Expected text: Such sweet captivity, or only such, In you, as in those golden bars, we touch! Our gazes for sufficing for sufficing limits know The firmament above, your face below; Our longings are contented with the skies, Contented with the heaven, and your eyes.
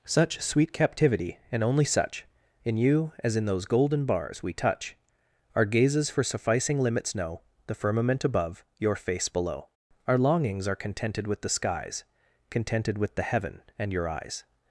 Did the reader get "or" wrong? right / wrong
wrong